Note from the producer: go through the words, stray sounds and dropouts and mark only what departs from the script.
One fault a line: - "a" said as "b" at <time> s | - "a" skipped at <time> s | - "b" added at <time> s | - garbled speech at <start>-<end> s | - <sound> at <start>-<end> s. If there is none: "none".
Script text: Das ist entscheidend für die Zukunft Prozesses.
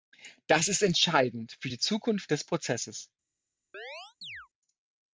- "des" added at 2.3 s
- chirp at 3.7-4.5 s